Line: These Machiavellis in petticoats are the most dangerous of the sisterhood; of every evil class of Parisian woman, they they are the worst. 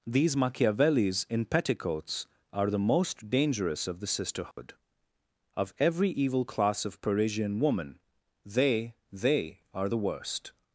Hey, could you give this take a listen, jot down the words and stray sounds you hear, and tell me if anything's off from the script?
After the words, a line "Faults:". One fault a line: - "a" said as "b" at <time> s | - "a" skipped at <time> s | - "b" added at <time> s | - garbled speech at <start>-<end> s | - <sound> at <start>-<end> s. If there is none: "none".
These Machiavellis in petticoats are the most dangerous of the sisterhood; of every evil class of Parisian woman, they they are the worst.
Faults:
- dropout at 4.5-4.6 s